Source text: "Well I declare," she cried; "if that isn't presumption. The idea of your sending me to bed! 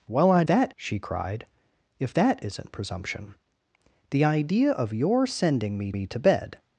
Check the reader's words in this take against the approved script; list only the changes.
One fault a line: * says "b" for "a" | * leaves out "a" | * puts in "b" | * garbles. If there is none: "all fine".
* says "that" for "declare"
* puts in "me"